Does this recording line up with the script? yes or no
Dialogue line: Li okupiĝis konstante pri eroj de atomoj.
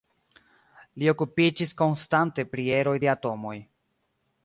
yes